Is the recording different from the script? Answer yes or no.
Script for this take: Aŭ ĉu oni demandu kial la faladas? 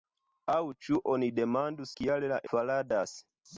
no